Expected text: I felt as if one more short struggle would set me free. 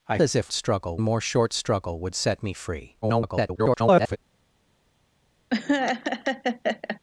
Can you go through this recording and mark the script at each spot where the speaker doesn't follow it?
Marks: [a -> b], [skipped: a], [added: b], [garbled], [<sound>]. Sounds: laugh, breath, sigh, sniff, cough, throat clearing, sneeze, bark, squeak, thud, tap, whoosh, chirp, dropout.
I [skipped: felt] as if [one -> struggle] more short struggle would set me free. [garbled] [laugh]